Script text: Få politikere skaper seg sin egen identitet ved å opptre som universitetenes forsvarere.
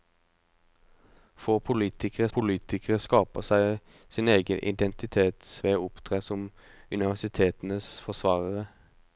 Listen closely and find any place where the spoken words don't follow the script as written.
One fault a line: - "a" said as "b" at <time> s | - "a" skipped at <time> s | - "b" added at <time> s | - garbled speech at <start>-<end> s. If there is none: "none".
- "politikere" added at 2.3 s